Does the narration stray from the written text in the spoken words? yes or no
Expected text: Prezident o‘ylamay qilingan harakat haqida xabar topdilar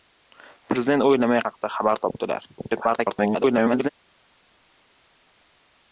yes